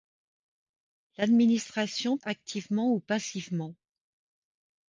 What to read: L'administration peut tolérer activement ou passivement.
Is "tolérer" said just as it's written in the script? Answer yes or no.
no